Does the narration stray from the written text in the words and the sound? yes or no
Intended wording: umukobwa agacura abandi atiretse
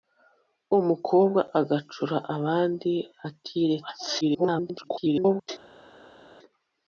yes